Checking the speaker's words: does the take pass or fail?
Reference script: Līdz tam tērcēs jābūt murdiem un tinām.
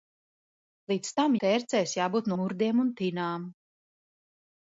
pass